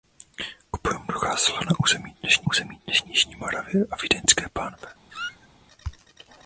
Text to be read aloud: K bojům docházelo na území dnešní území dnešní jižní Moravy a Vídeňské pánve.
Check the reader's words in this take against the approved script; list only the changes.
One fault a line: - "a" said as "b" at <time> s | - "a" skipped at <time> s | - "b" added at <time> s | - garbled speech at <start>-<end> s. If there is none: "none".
none